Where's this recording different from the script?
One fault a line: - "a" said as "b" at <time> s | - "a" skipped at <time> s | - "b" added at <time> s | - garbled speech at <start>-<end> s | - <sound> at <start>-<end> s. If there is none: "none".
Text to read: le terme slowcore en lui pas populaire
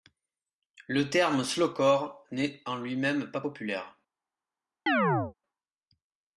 - "n'est" added at 2.3 s
- "même" added at 3.0 s
- chirp at 4.9-5.3 s